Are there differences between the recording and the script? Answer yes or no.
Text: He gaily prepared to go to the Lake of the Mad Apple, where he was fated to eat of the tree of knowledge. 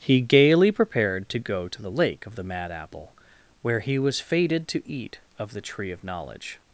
no